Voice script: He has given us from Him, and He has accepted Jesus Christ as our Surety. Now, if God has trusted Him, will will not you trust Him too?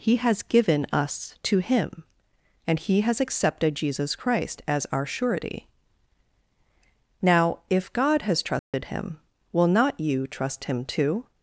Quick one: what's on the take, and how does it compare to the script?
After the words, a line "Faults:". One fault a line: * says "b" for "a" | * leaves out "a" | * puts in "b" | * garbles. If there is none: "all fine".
He has given us to Him, and He has accepted Jesus Christ as our Surety. Now, if God has trusted Him, will not you trust Him too?
Faults:
* says "to" for "from"
* leaves out "will"